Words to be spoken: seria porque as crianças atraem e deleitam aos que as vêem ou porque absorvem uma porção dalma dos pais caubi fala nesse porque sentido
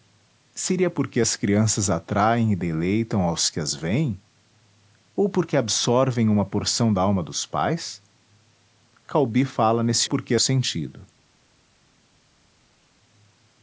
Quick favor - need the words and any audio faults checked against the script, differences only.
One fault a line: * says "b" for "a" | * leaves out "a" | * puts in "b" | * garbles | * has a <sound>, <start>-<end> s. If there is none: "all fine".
all fine